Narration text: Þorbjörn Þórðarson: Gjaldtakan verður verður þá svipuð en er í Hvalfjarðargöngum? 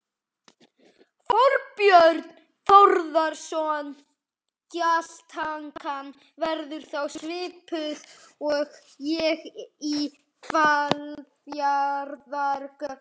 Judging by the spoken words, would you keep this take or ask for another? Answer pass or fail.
fail